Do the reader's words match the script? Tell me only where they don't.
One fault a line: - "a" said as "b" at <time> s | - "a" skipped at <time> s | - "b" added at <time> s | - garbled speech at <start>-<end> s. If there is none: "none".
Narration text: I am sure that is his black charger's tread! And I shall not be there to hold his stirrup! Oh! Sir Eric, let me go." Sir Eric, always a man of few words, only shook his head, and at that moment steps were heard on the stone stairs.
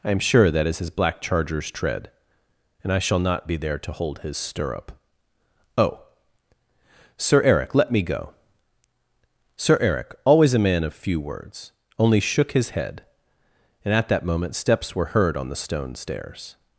none